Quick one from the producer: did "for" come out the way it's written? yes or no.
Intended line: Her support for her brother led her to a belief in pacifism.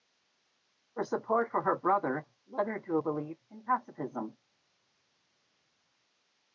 yes